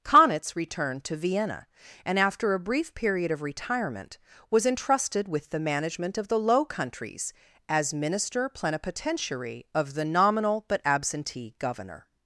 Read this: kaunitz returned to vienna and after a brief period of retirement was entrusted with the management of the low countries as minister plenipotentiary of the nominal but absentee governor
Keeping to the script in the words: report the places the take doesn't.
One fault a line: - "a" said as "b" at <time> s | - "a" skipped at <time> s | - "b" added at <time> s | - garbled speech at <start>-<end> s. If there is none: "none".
none